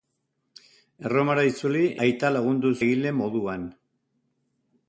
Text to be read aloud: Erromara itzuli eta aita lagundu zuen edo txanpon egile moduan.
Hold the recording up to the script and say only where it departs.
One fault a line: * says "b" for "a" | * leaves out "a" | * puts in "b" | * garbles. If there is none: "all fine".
* leaves out "eta"
* leaves out "zuen edo txanpon"